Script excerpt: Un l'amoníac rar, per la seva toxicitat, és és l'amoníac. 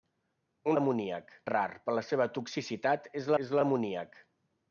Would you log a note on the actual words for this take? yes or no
no